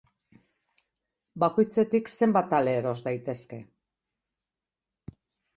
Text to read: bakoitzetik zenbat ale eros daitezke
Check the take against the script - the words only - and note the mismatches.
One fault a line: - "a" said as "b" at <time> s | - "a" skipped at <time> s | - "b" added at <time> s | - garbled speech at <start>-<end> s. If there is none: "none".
none